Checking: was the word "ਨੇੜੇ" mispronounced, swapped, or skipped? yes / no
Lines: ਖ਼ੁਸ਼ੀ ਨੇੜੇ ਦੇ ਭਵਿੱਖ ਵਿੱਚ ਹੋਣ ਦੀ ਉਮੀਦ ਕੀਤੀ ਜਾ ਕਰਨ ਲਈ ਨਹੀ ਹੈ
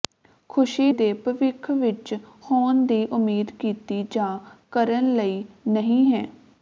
yes